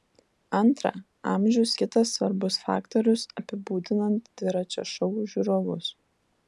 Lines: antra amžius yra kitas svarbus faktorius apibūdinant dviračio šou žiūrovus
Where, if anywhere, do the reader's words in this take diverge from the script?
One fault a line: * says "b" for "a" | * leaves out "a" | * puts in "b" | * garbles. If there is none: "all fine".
* leaves out "yra"